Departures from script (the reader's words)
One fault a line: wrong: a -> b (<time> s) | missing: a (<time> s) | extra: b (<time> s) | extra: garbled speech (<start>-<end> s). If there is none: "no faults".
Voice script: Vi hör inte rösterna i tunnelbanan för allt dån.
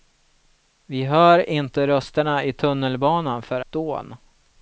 missing: allt (3.6 s)